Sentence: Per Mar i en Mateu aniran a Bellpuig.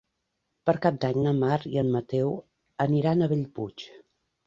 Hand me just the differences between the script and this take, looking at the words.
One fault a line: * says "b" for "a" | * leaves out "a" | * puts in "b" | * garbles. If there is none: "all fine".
* puts in "Cap d'Any na"